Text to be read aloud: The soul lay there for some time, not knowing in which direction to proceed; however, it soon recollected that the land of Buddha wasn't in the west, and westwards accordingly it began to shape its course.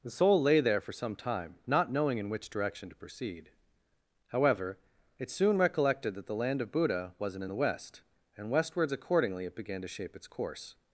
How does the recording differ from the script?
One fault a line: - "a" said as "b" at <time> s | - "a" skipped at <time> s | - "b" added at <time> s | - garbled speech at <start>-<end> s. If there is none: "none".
none